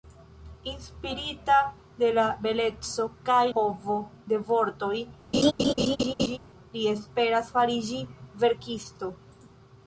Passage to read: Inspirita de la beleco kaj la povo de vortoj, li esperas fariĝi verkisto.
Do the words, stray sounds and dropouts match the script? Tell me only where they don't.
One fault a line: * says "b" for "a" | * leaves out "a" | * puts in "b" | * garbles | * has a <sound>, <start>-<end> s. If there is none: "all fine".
* leaves out "la"
* has a laugh, 5.3-6.4 s